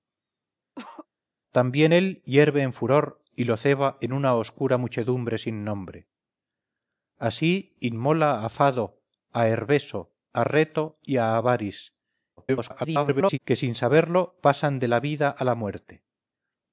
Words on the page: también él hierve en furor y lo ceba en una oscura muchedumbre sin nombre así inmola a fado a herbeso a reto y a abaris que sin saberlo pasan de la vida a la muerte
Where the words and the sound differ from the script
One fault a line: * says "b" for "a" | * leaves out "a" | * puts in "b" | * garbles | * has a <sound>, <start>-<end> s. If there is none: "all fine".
* has a cough, 0.8-1.1 s
* garbles